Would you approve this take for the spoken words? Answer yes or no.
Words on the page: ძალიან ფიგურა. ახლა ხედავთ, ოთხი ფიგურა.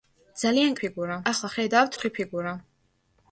yes